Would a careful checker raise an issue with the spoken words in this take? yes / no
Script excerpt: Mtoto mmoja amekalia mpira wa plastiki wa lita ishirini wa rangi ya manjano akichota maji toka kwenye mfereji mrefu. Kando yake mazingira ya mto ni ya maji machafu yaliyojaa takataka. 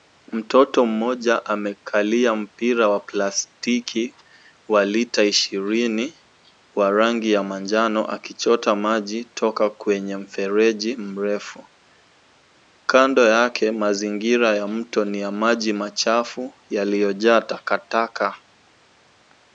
no